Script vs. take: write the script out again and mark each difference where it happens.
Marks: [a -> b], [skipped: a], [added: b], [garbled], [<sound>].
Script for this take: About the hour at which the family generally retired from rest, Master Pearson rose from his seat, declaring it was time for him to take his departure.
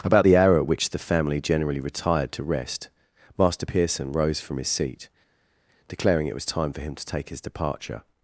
About the hour at which the family generally retired [from -> to] rest, Master Pearson rose from his seat, declaring it was time for him to take his departure.